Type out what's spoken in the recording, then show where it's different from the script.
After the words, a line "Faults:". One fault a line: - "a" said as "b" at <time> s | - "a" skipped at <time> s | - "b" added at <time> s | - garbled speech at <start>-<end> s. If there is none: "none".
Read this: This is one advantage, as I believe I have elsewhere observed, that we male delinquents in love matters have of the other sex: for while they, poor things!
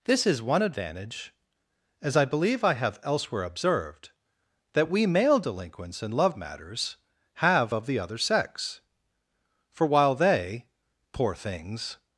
This is one advantage, as I believe I have elsewhere observed, that we male delinquents in love matters have of the other sex: for while they, poor things!
Faults:
none